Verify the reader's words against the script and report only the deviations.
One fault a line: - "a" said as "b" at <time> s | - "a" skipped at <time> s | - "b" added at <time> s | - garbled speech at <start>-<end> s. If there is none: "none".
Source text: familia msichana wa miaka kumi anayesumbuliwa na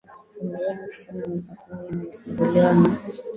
- "ya" added at 0.7 s